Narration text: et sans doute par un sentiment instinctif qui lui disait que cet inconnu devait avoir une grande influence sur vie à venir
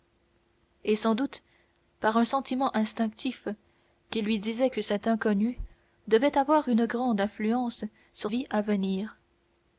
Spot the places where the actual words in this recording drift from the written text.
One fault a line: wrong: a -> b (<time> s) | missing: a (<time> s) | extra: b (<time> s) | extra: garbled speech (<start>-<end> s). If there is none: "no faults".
no faults